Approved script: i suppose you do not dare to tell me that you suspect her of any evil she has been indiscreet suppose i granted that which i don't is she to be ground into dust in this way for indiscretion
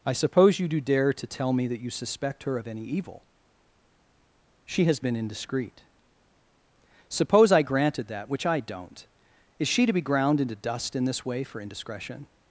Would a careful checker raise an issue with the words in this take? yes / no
yes